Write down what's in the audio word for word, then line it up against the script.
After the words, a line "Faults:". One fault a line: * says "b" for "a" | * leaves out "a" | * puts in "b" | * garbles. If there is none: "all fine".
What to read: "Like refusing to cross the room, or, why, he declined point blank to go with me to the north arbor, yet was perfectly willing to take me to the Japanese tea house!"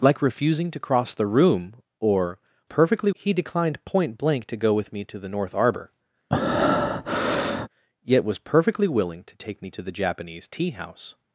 "Like refusing to cross the room, or, perfectly, he declined point blank to go with me to the north arbor, yet was perfectly willing to take me to the Japanese tea house!"
Faults:
* says "perfectly" for "why"